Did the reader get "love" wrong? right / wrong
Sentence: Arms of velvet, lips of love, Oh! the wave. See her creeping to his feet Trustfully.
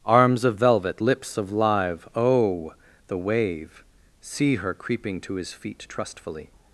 wrong